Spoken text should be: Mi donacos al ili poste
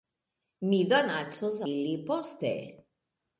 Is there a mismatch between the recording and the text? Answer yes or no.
yes